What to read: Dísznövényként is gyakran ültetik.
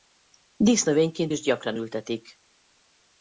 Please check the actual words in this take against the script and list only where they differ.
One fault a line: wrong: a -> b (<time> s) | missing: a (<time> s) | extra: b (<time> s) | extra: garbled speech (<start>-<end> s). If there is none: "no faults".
no faults